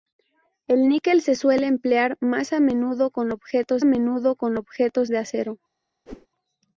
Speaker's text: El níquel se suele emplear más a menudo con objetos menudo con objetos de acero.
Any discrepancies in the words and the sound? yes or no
yes